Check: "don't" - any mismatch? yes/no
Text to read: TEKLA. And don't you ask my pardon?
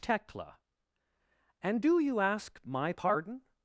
yes